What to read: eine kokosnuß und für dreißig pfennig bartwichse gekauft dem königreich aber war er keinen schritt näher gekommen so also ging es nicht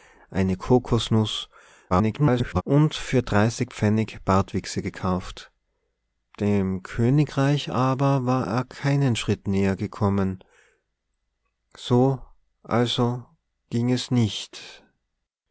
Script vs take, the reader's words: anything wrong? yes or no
yes